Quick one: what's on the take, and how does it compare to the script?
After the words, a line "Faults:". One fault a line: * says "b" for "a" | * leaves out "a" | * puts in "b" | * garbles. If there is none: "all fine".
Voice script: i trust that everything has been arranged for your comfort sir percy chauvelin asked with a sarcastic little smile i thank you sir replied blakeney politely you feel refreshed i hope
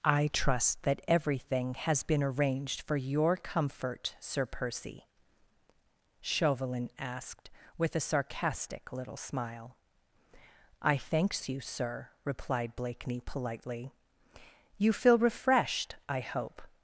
i trust that everything has been arranged for your comfort sir percy chauvelin asked with a sarcastic little smile i thanks you sir replied blakeney politely you feel refreshed i hope
Faults:
* says "thanks" for "thank"